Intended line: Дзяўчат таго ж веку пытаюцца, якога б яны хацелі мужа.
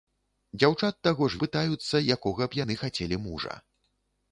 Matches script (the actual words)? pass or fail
fail